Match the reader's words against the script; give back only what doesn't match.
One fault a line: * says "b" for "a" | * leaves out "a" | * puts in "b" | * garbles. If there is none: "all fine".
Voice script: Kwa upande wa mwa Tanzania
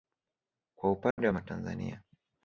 all fine